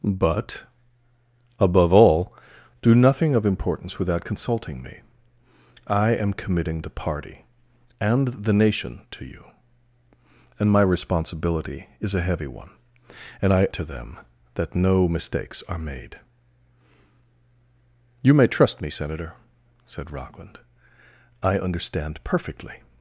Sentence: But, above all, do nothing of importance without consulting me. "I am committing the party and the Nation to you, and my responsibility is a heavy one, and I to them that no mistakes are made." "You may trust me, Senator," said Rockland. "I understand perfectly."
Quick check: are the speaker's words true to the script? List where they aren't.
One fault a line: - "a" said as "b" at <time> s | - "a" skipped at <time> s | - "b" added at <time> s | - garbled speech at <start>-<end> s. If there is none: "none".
none